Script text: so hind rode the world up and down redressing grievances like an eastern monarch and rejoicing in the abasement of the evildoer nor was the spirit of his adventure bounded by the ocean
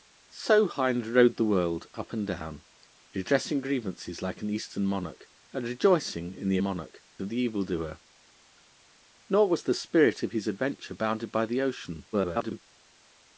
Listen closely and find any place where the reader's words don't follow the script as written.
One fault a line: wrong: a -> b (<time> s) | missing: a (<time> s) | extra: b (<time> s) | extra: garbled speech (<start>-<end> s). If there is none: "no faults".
wrong: abasement -> monarch (6.6 s)
extra: garbled speech (12.1-12.6 s)